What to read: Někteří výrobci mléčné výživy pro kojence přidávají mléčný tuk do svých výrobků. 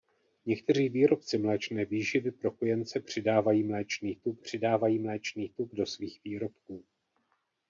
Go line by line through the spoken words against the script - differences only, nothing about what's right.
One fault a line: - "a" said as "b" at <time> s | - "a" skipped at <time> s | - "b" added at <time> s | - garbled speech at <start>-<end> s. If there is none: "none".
- "přidávají mléčný tuk" added at 4.4 s